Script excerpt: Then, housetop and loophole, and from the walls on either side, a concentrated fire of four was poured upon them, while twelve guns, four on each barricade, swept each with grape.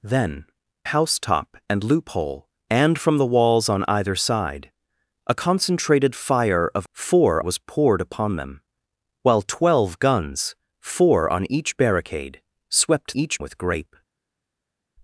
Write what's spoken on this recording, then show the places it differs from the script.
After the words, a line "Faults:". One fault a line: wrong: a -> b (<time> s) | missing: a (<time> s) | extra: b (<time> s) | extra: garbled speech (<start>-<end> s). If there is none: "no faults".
Then, housetop and loophole, and from the walls on either side, a concentrated fire of four was poured upon them, while twelve guns, four on each barricade, swept each with grape.
Faults:
no faults